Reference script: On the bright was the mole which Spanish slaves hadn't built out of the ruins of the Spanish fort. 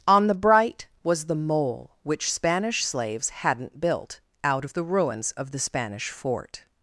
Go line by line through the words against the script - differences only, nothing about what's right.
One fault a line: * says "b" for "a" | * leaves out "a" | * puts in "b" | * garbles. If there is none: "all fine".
all fine